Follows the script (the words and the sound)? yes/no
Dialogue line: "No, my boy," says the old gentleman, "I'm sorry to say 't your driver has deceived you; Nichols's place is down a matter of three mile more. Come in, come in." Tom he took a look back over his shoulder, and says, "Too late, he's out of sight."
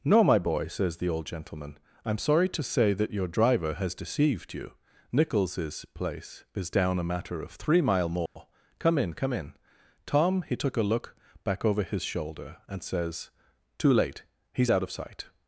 no